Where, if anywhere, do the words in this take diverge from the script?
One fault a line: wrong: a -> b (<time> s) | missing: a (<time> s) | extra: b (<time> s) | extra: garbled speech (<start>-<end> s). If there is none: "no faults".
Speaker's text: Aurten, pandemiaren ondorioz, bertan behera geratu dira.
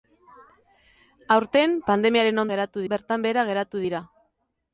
wrong: ondorioz -> geratu (2.5 s)